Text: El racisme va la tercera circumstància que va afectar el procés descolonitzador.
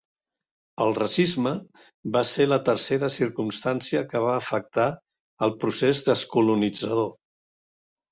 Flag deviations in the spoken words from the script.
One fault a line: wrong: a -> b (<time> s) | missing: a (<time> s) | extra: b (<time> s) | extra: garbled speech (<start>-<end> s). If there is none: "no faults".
extra: ser (2.3 s)